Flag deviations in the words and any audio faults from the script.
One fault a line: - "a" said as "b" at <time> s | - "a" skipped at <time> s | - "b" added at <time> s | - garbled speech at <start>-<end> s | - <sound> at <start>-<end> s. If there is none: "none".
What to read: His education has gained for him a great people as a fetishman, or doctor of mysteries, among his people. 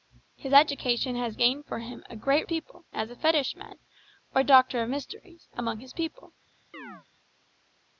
- chirp at 6.7-7.1 s